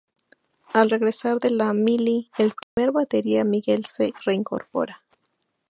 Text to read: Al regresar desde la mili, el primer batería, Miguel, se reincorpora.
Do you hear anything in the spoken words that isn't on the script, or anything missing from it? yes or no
yes